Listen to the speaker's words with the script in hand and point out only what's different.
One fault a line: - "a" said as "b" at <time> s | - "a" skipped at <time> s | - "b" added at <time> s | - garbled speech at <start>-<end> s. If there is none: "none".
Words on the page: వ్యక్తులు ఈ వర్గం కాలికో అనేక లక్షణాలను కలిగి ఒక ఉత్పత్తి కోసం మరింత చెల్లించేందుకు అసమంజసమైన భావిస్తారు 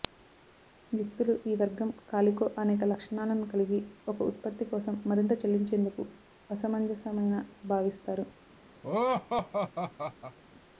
none